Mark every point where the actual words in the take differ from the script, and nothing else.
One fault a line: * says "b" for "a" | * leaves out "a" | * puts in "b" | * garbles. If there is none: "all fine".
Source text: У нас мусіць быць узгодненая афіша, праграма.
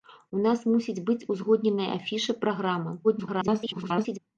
* garbles